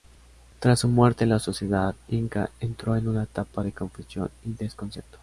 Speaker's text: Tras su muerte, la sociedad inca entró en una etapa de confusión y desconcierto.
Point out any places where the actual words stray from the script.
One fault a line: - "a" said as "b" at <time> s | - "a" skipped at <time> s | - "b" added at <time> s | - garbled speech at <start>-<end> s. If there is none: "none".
none